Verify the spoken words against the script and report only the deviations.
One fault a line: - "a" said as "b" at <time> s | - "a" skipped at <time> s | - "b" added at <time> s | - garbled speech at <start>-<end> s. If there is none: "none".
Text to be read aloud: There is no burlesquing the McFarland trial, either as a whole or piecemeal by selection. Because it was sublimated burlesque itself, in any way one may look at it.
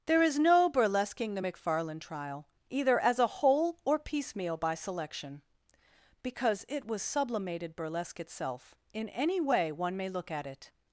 none